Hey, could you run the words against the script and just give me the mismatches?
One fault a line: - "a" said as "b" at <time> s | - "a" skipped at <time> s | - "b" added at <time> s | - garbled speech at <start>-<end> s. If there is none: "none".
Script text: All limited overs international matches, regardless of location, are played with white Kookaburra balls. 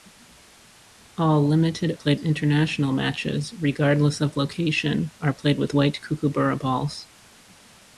- "overs" said as "played" at 1.9 s